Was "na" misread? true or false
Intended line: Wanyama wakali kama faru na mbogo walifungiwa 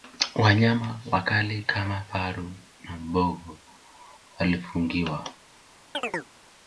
false